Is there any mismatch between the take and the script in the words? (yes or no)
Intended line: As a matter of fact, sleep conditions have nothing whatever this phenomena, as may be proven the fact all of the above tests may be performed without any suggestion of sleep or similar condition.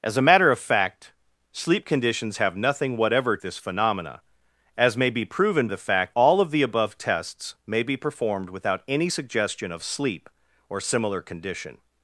no